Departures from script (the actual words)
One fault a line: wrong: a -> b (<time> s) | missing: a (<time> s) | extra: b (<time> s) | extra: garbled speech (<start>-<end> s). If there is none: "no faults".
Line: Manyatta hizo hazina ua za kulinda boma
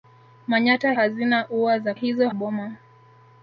missing: hizo (0.9 s)
wrong: kulinda -> hizo (1.9 s)